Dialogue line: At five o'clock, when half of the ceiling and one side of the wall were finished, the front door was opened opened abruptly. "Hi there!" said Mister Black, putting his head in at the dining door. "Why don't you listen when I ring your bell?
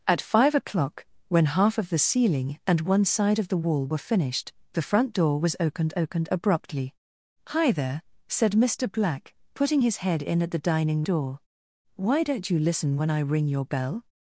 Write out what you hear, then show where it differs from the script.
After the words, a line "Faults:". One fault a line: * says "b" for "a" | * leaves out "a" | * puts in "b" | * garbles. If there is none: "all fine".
At five o'clock, when half of the ceiling and one side of the wall were finished, the front door was opened opened abruptly. "Hi there!" said Mister Black, putting his head in at the dining door. "Why don't you listen when I ring your bell?
Faults:
all fine